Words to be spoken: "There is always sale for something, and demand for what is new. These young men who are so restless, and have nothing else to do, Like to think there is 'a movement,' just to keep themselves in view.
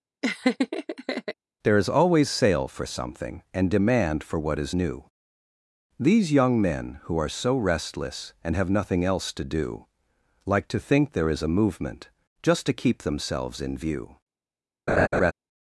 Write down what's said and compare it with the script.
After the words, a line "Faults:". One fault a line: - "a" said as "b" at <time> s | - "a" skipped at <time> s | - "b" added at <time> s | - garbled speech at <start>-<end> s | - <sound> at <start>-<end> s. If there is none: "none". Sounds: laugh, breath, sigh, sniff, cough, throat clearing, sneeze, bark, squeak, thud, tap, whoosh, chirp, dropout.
"There is always sale for something, and demand for what is new. These young men who are so restless, and have nothing else to do, Like to think there is 'a movement,' just to keep themselves in view.
Faults:
- laugh at 0.2-1.3 s
- laugh at 14.9-15.3 s